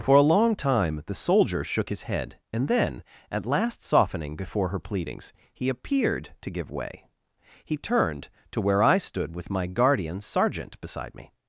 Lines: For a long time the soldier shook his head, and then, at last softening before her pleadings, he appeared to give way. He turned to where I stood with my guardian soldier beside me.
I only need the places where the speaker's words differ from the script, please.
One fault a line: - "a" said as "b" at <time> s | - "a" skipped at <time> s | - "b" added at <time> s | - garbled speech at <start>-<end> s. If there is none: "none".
- "soldier" said as "sergeant" at 10.2 s